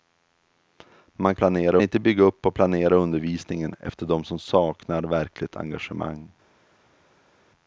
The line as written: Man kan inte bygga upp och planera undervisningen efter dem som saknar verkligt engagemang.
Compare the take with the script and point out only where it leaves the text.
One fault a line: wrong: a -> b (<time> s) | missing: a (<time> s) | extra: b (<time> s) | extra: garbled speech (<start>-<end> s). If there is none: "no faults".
wrong: kan -> planera (1.4 s)